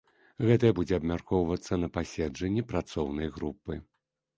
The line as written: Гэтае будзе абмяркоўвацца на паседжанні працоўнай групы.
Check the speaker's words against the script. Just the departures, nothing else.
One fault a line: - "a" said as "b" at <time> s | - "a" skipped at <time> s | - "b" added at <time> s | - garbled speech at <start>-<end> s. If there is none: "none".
none